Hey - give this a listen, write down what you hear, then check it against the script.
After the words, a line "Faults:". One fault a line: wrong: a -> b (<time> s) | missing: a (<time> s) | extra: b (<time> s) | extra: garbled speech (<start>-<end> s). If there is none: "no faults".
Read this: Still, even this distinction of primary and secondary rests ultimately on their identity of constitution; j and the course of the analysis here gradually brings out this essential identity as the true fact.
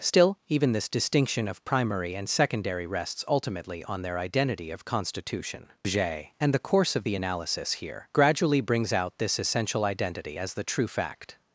Still, even this distinction of primary and secondary rests ultimately on their identity of constitution; j and the course of the analysis here gradually brings out this essential identity as the true fact.
Faults:
no faults